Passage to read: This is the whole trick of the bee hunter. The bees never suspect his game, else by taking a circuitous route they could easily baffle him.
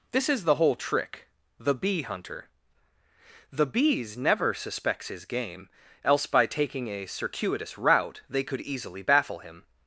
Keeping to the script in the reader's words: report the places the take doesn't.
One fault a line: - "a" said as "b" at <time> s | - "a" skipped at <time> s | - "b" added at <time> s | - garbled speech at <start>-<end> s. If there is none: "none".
- "of" skipped at 1.3 s
- "suspect" said as "suspects" at 4.5 s